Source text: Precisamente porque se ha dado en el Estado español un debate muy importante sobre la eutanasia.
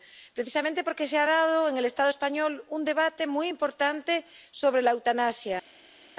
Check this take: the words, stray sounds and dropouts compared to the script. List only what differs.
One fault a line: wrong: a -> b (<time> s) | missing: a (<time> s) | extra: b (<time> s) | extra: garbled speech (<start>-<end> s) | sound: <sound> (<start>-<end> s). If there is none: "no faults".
no faults